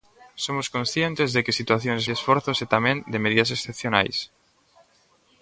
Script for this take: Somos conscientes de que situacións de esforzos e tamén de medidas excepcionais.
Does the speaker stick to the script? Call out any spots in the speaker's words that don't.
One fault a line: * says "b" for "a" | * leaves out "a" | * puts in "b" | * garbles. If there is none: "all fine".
all fine